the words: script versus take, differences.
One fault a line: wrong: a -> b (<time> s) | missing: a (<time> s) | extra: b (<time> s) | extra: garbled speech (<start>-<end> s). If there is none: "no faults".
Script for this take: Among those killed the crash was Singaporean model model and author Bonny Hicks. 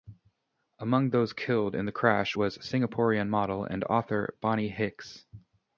extra: in (1.8 s)
missing: model (3.7 s)